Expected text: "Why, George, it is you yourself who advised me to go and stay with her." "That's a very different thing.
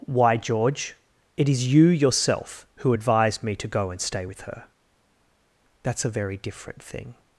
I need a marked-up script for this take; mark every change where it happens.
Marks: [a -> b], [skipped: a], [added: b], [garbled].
"Why, George, it is you yourself who advised me to go and stay with her." "That's a very different thing.